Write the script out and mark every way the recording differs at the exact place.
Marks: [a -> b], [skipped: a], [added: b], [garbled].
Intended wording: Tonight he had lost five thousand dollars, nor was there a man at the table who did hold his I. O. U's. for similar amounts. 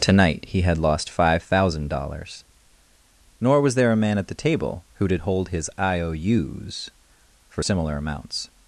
Tonight he had lost five thousand dollars, nor was there a man at the table who did hold his I. O. U's. for similar amounts.